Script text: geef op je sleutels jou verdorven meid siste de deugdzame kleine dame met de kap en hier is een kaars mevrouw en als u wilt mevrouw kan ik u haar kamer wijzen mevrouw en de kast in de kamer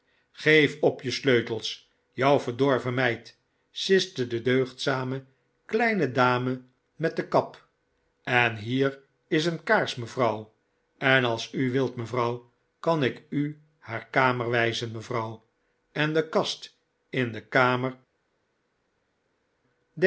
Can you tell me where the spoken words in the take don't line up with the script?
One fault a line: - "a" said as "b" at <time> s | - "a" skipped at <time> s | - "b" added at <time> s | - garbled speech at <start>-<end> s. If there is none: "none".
none